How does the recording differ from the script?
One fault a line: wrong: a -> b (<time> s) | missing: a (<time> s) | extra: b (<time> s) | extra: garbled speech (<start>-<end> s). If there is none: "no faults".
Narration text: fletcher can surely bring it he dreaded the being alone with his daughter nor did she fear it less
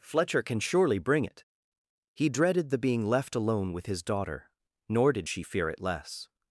extra: left (3.1 s)